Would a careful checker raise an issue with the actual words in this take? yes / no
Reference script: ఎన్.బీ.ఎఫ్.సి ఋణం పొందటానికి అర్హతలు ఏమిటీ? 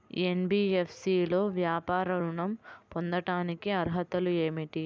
yes